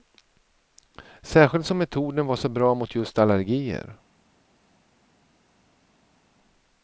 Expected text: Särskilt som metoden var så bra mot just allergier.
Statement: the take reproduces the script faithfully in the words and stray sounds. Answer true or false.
true